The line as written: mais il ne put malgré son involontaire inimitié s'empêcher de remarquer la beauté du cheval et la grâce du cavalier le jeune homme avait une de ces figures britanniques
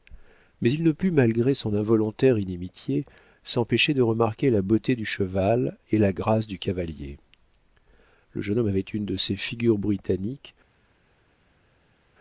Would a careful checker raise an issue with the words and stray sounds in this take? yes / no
no